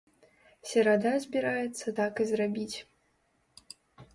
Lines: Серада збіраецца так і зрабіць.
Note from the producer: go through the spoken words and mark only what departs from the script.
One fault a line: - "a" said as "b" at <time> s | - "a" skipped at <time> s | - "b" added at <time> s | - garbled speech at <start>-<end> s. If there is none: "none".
none